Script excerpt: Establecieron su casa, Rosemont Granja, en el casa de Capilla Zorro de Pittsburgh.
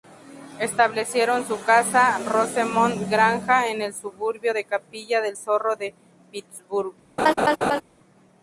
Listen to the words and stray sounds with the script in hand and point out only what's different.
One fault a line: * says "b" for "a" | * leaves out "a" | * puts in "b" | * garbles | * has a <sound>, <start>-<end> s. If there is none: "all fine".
* says "suburbio" for "casa"
* puts in "del"
* has a laugh, 7.2-7.8 s